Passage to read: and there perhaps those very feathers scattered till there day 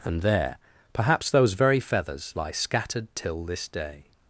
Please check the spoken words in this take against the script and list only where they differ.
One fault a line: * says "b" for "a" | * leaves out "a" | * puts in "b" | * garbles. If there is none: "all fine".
* puts in "lie"
* says "this" for "there"